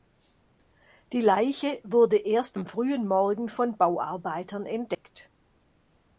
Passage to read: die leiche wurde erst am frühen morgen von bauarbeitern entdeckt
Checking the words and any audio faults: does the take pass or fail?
pass